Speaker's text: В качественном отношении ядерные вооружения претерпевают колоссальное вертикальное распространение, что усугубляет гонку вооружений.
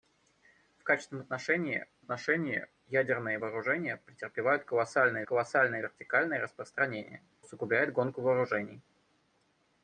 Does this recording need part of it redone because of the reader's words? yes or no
yes